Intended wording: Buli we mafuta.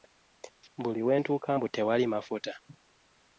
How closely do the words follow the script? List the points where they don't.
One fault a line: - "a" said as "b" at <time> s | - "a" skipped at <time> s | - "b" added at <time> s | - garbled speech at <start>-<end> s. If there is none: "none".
- "ntuuka mbu tewali" added at 1.2 s